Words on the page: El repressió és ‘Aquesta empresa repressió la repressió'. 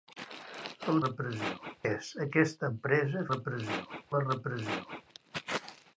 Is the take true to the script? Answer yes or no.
yes